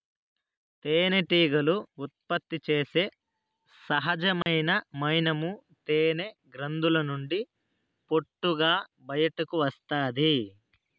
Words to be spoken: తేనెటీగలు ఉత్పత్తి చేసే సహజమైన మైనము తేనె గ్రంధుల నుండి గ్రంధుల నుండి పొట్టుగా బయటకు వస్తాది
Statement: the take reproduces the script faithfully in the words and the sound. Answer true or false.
false